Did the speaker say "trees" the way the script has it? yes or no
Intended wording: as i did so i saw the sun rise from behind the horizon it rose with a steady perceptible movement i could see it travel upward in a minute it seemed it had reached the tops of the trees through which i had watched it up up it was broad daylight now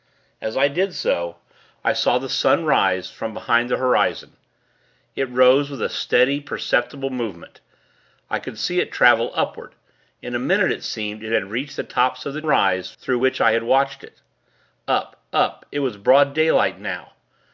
no